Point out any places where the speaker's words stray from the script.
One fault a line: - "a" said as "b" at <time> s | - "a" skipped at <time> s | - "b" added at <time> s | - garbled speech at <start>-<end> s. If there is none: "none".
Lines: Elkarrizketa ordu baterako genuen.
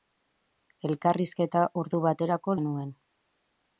none